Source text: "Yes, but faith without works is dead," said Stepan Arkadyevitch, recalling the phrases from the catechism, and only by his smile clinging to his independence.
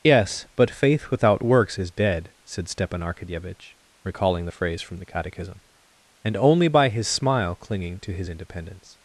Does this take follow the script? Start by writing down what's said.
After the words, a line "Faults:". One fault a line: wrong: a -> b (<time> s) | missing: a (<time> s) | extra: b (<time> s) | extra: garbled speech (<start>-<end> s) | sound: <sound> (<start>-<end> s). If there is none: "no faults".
"Yes, but faith without works is dead," said Stepan Arkadyevitch, recalling the phrase from the catechism, and only by his smile clinging to his independence.
Faults:
wrong: phrases -> phrase (4.5 s)